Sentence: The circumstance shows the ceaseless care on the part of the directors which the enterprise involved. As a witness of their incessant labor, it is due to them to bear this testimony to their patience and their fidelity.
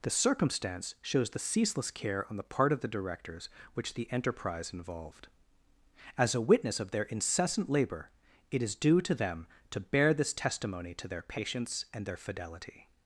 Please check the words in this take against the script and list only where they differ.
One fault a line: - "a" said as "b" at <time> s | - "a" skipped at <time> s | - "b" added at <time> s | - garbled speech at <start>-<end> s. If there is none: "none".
none